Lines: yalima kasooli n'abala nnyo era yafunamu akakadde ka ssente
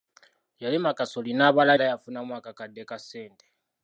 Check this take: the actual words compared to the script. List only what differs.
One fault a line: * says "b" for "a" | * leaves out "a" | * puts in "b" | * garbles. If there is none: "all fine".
* leaves out "nnyo"